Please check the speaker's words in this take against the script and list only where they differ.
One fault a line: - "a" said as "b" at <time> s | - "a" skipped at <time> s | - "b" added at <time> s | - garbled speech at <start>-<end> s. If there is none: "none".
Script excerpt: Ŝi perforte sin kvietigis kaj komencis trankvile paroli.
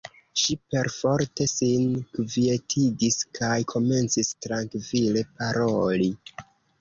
none